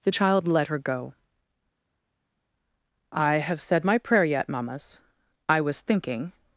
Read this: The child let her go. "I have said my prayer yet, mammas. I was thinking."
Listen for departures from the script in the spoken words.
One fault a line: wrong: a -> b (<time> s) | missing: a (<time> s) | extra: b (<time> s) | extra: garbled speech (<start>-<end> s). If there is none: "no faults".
no faults